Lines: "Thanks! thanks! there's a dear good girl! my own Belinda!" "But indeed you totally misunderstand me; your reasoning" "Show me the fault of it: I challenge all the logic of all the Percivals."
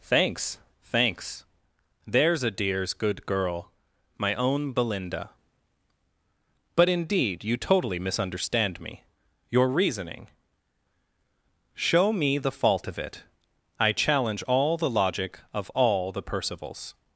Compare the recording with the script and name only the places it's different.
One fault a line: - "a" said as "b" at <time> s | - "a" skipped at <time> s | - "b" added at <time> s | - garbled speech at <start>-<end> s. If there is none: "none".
- "dear" said as "dears" at 2.5 s